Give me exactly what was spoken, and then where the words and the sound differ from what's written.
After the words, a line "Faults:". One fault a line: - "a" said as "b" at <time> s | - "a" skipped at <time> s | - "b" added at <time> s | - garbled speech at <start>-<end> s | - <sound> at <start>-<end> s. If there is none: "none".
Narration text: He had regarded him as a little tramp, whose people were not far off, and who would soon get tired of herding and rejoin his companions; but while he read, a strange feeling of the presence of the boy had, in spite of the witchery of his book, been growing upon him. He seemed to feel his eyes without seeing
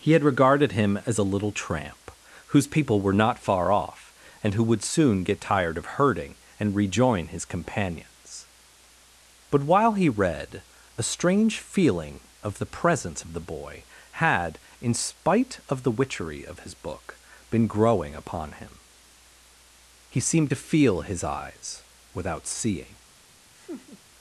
He had regarded him as a little tramp, whose people were not far off, and who would soon get tired of herding and rejoin his companions; but while he read, a strange feeling of the presence of the boy had, in spite of the witchery of his book, been growing upon him. He seemed to feel his eyes without seeing
Faults:
- laugh at 23.5-24.0 s